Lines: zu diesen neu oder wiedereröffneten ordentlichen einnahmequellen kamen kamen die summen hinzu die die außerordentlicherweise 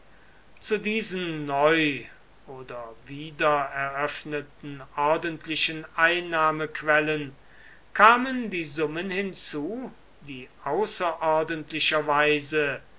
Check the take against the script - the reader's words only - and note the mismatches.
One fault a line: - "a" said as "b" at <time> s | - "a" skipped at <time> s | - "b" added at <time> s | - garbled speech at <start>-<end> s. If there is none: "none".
- "kamen" skipped at 8.5 s
- "die" skipped at 10.5 s